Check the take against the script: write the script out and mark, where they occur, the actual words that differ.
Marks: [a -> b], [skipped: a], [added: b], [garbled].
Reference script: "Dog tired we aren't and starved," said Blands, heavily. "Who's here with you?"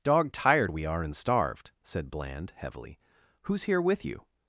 "Dog tired we [aren't -> are] and starved," said [Blands, -> Bland] heavily. "Who's here with you?"